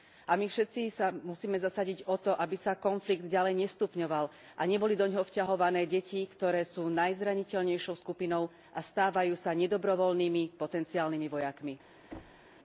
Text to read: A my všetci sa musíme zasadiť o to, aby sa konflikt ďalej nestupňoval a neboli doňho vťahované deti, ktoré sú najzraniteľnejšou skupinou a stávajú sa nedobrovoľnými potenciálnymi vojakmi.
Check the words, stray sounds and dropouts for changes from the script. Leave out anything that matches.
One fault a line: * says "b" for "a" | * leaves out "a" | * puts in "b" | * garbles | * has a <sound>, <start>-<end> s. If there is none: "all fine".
* has a thud, 12.1-12.5 s